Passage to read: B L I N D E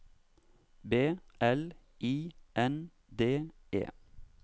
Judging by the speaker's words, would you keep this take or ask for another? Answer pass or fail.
pass